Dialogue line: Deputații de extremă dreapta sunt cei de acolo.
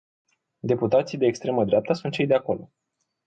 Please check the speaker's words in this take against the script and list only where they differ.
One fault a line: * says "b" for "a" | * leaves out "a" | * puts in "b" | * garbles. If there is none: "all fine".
all fine